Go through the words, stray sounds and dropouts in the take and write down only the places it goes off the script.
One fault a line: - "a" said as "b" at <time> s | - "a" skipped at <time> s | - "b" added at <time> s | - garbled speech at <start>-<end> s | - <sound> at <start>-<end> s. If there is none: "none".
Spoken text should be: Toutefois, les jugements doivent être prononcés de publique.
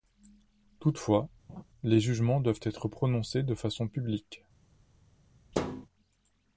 - laugh at 1.5-1.6 s
- "façon" added at 3.5 s
- thud at 5.5-5.9 s